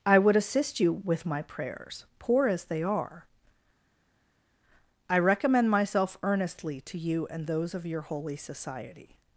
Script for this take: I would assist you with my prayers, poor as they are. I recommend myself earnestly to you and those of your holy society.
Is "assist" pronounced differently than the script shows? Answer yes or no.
no